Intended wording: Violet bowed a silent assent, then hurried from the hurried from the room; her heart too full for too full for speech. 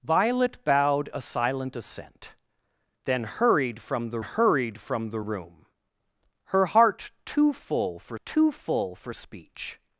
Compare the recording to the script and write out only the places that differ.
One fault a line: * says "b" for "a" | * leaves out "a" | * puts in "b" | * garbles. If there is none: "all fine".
all fine